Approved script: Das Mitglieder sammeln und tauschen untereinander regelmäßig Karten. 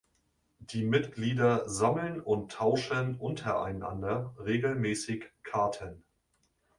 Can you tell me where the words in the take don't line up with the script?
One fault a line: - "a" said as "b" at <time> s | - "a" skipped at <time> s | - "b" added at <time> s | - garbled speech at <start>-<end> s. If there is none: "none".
- "Das" said as "Die" at 0.6 s